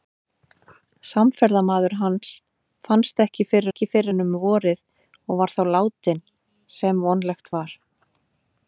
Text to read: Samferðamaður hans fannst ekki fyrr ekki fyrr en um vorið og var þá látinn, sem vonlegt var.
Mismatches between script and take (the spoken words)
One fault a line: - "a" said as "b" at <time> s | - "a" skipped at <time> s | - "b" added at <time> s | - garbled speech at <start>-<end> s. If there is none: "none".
none